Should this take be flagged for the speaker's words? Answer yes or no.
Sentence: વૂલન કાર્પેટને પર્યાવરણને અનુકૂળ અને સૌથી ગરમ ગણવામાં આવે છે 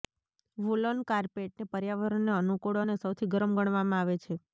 no